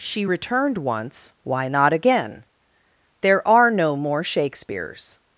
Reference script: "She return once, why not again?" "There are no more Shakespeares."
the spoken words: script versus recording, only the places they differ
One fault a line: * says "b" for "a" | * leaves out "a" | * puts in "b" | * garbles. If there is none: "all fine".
* says "returned" for "return"